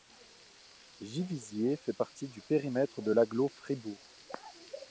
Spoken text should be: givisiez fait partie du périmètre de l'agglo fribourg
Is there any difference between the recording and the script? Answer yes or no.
no